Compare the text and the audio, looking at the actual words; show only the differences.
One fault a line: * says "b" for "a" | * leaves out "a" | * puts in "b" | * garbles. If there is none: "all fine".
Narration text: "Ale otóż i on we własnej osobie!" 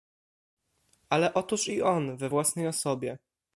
all fine